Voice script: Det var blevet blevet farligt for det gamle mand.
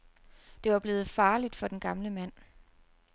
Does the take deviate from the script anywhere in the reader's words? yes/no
yes